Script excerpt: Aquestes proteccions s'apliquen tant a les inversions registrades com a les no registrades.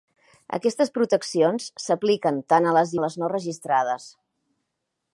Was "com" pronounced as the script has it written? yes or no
no